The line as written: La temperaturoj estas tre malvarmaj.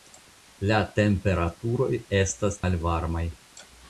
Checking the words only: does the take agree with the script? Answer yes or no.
no